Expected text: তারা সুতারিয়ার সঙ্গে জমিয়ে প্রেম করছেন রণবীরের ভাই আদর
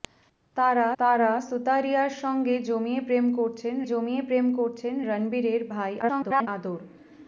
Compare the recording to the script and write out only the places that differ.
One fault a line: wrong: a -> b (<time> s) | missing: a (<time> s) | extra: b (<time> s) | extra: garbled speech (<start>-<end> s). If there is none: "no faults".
extra: তারা (1.0 s)
extra: জমিয়ে প্রেম করছেন (3.8 s)
extra: garbled speech (6.0-6.5 s)